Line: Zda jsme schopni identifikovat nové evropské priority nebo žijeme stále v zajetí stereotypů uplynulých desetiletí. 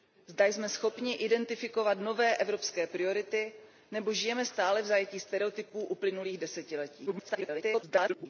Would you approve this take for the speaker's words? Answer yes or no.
no